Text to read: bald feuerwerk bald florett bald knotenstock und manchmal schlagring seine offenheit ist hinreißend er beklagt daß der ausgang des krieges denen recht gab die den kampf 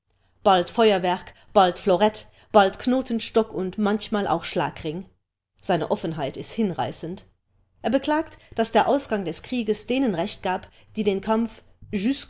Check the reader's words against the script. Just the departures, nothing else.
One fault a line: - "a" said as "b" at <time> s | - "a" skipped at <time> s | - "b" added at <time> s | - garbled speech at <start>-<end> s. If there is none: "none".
- "auch" added at 4.3 s